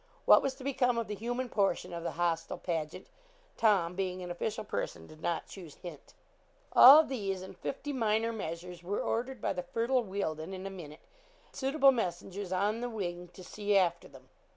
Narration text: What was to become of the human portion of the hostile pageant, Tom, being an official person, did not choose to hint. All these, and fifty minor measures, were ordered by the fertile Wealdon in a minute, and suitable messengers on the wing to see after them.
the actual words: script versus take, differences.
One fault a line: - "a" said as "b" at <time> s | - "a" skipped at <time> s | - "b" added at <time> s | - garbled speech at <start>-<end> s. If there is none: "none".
- "to" skipped at 5.8 s
- "and" skipped at 11.0 s